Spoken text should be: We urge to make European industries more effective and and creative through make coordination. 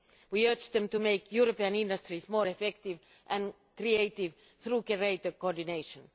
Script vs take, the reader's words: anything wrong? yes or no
yes